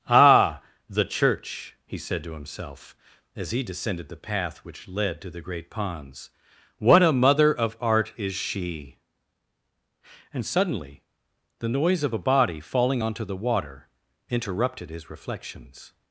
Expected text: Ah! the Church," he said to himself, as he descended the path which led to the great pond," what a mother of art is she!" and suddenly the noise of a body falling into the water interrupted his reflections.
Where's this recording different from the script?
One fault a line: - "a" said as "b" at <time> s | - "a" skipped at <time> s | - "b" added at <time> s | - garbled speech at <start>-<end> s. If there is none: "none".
- "pond" said as "ponds" at 5.7 s
- "into" said as "onto" at 13.0 s